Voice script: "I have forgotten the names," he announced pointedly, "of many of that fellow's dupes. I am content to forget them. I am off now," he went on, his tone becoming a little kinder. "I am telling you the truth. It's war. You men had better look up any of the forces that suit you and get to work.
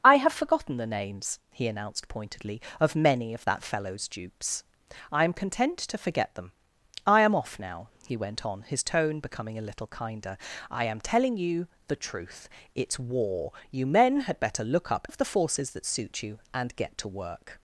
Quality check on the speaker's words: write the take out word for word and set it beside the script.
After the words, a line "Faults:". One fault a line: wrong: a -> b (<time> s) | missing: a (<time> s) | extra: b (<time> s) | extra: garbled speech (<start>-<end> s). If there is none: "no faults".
"I have forgotten the names," he announced pointedly, "of many of that fellow's dupes. I am content to forget them. I am off now," he went on, his tone becoming a little kinder. "I am telling you the truth. It's war. You men had better look up of the forces that suit you and get to work.
Faults:
missing: any (15.1 s)